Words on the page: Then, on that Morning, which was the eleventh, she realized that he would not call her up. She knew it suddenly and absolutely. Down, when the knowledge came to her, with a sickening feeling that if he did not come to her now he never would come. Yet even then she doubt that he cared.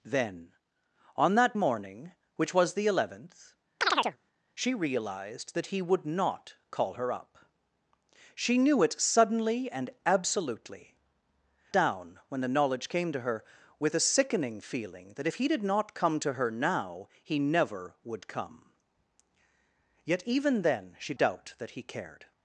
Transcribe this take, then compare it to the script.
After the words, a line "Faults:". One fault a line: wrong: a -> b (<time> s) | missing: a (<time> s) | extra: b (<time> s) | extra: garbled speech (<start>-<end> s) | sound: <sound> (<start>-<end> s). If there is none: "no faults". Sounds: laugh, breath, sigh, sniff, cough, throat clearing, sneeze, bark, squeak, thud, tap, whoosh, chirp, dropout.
Then, on that Morning, which was the eleventh, she realized that he would not call her up. She knew it suddenly and absolutely. Down, when the knowledge came to her, with a sickening feeling that if he did not come to her now he never would come. Yet even then she doubt that he cared.
Faults:
sound: chirp (3.8-4.2 s)